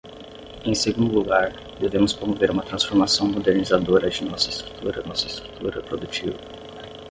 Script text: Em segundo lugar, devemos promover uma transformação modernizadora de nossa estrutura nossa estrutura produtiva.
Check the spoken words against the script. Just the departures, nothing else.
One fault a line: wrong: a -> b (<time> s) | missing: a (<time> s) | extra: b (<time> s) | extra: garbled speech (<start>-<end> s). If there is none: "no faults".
no faults